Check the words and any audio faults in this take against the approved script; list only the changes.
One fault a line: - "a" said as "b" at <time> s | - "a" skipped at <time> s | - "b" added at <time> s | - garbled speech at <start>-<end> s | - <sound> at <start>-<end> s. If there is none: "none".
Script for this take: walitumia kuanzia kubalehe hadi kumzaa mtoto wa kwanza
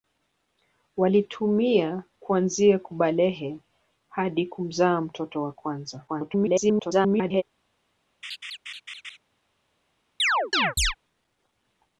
- garbled speech at 6.1-7.4 s
- laugh at 8.2-9.2 s
- chirp at 10.2-10.9 s